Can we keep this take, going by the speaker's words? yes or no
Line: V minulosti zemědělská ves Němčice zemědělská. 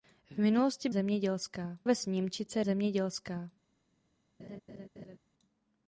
yes